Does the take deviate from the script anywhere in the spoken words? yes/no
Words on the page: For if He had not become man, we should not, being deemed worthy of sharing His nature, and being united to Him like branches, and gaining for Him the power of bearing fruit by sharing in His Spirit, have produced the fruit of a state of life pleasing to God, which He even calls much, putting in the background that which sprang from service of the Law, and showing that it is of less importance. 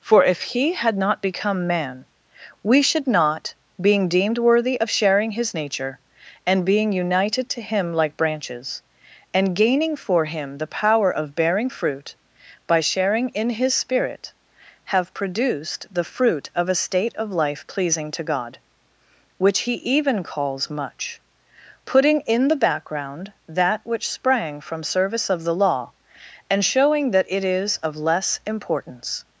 no